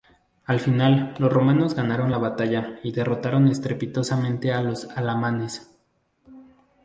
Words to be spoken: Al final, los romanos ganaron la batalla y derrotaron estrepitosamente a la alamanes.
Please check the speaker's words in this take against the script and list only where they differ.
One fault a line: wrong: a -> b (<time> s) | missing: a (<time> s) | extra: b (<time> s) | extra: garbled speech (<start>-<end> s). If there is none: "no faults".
wrong: la -> los (4.6 s)